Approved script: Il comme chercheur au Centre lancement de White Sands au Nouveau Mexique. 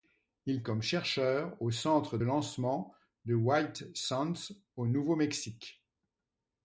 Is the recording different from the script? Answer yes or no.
no